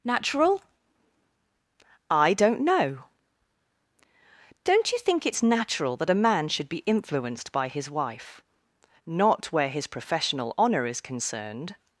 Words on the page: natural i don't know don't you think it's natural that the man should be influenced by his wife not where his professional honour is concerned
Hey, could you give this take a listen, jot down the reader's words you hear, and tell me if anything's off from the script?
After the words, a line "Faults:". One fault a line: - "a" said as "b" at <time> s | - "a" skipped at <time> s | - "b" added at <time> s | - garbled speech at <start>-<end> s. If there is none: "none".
natural i don't know don't you think it's natural that a man should be influenced by his wife not where his professional honour is concerned
Faults:
- "the" said as "a" at 6.1 s